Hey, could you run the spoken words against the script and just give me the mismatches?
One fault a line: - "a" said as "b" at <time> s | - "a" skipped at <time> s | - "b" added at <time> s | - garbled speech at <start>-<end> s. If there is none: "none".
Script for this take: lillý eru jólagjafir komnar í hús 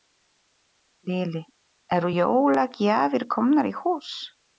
none